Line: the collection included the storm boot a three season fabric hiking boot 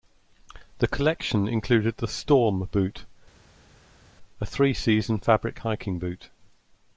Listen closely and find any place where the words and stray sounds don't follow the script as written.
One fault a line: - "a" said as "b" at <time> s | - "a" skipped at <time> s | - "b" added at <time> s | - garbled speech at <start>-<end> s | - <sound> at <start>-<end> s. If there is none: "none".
none